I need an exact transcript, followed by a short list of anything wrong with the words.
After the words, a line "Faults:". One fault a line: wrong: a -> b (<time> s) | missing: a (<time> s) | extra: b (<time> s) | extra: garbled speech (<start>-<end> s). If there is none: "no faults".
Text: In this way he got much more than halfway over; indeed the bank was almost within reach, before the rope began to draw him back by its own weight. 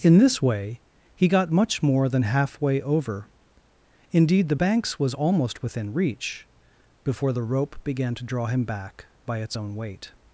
In this way he got much more than halfway over; indeed the banks was almost within reach, before the rope began to draw him back by its own weight.
Faults:
wrong: bank -> banks (4.5 s)